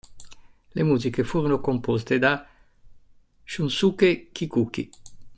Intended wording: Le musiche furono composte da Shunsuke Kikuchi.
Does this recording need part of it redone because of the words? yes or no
no